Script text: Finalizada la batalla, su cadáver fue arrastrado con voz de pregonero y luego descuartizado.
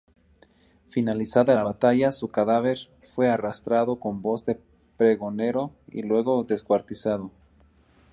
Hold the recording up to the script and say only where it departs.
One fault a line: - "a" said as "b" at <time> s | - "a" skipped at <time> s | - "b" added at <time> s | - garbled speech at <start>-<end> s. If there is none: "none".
none